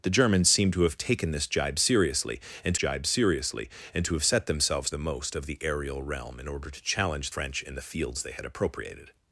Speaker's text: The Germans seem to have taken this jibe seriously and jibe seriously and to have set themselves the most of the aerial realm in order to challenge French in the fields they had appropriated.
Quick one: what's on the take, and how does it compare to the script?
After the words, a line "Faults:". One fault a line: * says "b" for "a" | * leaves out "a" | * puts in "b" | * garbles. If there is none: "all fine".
The Germans seem to have taken this jibe seriously and jibe seriously and to have set themselves the most of the aerial realm in order to challenge French in the fields they had appropriated.
Faults:
all fine